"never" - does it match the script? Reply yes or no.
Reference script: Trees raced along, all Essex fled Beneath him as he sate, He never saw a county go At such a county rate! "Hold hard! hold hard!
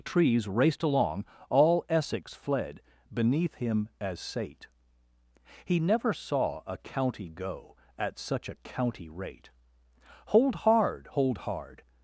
yes